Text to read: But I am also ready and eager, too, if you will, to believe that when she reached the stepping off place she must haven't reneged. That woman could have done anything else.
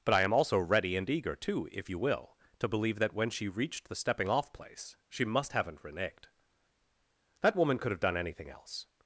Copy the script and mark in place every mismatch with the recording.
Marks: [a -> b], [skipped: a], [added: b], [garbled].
But I am also ready and eager, too, if you will, to believe that when she reached the stepping off place she must haven't reneged. That woman could have done anything else.